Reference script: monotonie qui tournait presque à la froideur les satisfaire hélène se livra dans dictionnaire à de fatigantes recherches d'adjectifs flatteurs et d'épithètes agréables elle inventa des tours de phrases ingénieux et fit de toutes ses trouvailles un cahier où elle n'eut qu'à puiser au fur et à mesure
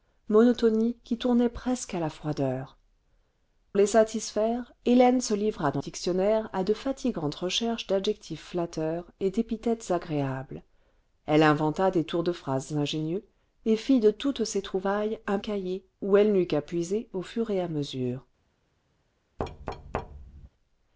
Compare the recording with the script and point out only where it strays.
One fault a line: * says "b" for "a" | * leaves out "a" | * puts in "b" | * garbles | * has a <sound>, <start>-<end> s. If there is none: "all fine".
* has a thud, 19.4-20.5 s